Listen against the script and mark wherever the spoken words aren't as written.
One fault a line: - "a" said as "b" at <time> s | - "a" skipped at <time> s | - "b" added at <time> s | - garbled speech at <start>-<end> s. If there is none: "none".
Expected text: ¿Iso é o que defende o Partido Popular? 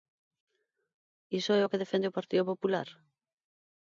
none